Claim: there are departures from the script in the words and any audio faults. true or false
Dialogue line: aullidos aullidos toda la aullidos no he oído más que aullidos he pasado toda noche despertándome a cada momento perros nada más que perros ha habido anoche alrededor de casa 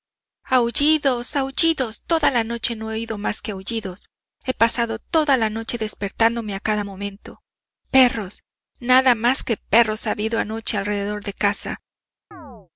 true